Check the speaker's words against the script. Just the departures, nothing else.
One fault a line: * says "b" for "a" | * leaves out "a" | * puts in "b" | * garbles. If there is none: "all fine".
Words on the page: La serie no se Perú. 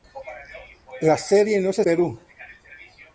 all fine